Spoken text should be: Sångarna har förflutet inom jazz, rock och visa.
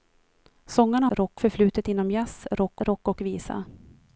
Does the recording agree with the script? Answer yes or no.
no